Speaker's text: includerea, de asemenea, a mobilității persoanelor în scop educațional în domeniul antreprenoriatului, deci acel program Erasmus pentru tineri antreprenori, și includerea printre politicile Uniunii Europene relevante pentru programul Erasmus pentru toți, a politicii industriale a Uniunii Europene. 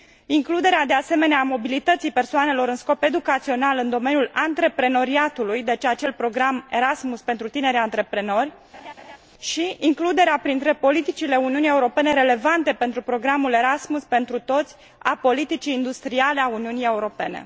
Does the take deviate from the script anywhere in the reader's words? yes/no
no